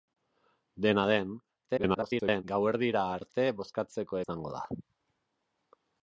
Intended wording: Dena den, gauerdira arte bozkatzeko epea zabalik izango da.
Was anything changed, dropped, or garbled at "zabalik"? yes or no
yes